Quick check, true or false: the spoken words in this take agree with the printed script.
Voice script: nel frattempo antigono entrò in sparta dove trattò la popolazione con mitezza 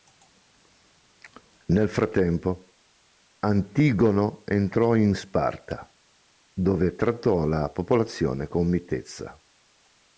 true